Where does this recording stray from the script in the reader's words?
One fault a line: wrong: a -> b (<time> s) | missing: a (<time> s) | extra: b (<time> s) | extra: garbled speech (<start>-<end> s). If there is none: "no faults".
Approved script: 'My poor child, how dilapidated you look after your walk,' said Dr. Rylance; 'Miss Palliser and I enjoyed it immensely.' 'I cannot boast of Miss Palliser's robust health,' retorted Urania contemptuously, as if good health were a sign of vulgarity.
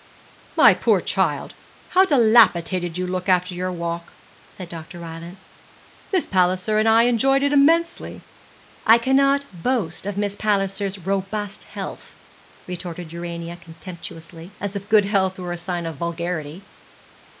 no faults